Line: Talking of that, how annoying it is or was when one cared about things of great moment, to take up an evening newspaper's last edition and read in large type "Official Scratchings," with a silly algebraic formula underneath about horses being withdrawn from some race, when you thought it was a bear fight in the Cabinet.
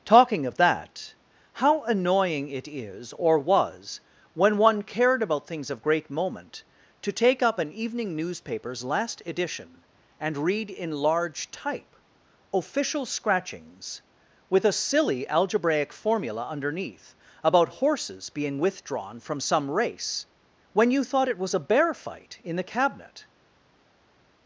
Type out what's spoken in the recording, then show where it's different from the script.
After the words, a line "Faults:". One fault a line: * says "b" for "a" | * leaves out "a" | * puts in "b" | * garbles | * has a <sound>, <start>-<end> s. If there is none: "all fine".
Talking of that, how annoying it is or was when one cared about things of great moment, to take up an evening newspaper's last edition and read in large type "Official Scratchings," with a silly algebraic formula underneath about horses being withdrawn from some race, when you thought it was a bear fight in the Cabinet.
Faults:
all fine